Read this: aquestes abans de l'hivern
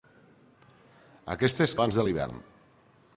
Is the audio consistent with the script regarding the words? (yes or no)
yes